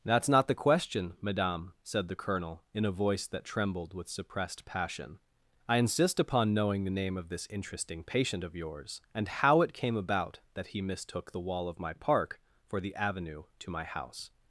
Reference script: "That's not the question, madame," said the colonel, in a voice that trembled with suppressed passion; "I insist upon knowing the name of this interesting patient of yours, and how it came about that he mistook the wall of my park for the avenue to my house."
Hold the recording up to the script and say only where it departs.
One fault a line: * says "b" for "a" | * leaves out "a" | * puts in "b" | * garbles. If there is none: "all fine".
all fine